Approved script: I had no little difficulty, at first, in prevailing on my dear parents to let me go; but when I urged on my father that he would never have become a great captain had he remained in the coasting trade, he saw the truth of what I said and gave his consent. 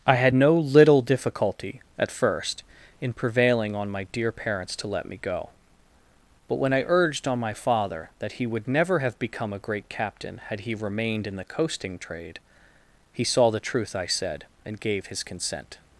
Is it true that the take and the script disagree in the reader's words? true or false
true